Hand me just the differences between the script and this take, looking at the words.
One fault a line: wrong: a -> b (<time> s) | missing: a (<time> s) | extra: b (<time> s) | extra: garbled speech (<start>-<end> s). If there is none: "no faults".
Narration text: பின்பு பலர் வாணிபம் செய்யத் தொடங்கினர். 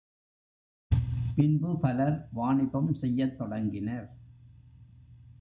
no faults